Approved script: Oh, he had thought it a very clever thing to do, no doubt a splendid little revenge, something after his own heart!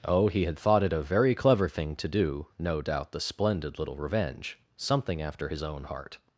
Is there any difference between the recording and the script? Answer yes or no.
yes